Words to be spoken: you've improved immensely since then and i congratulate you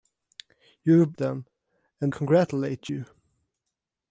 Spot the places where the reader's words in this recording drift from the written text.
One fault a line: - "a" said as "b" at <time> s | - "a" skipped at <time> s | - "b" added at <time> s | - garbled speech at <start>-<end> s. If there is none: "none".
- "improved immensely since" skipped at 1.1 s
- "i" skipped at 2.1 s